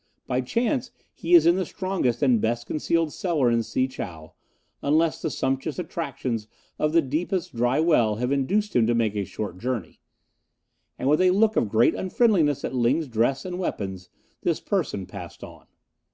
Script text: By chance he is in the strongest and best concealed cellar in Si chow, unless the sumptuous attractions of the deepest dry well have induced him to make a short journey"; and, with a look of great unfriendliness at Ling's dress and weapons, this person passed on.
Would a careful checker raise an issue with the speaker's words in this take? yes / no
no